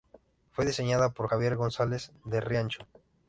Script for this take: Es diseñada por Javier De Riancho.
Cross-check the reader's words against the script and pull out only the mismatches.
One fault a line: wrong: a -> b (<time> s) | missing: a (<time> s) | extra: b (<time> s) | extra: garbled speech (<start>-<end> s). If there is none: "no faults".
wrong: Es -> Fue (0.5 s)
extra: González (1.6 s)